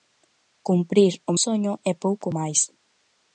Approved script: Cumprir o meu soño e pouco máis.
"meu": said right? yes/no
no